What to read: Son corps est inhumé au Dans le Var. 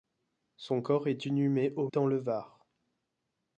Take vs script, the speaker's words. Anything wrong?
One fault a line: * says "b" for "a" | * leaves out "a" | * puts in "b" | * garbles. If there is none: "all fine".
all fine